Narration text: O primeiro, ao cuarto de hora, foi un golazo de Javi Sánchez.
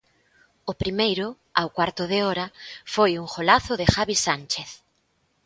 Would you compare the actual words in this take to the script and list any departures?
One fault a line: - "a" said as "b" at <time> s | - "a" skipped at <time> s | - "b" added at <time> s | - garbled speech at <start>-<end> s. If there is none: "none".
none